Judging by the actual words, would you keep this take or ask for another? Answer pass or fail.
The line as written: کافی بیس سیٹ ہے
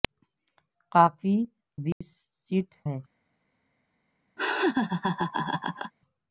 pass